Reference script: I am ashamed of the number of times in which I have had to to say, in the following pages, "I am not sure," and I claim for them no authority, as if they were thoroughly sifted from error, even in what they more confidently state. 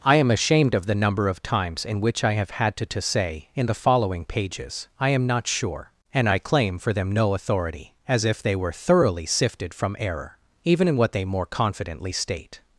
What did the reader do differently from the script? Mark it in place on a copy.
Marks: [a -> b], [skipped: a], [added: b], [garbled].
I am ashamed of the number of times in which I have had to to say, in the following pages, "I am not sure," and I claim for them no authority, as if they were thoroughly sifted from error, even in what they more confidently state.